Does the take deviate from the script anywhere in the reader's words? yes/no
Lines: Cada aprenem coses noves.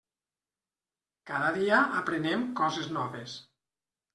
yes